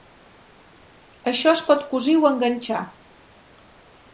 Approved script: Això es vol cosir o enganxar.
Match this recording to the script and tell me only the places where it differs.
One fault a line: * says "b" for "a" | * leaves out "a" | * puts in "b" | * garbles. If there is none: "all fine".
* says "pot" for "vol"